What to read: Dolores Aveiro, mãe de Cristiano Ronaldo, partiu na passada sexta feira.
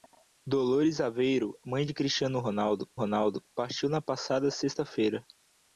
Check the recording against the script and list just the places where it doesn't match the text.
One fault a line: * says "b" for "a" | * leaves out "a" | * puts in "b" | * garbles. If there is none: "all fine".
* puts in "Ronaldo"